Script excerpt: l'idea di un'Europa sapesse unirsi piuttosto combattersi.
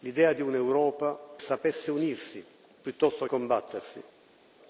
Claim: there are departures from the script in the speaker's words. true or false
false